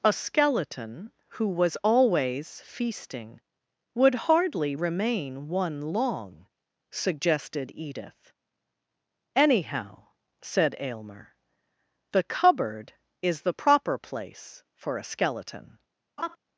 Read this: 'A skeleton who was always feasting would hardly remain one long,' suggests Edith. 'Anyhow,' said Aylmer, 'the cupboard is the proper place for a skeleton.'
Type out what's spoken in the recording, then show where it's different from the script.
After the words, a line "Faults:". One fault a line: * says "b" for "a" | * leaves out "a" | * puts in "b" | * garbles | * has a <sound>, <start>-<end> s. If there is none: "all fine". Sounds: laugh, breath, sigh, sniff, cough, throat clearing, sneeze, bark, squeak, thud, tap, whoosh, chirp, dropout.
'A skeleton who was always feasting would hardly remain one long,' suggested Edith. 'Anyhow,' said Aylmer, 'the cupboard is the proper place for a skeleton.'
Faults:
* says "suggested" for "suggests"
* has a laugh, 16.2-16.4 s